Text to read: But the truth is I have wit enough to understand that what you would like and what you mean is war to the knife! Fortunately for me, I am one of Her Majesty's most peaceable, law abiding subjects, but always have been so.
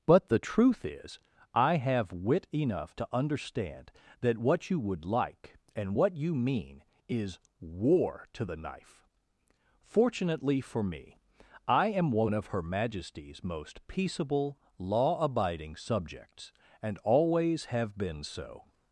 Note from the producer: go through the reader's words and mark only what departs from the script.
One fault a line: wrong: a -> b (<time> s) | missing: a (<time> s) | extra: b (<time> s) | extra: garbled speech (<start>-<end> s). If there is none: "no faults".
wrong: but -> and (16.8 s)